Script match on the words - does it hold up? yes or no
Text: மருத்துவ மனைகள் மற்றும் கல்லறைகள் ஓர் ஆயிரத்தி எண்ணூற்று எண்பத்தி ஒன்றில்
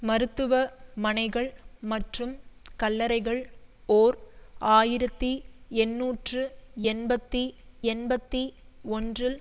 no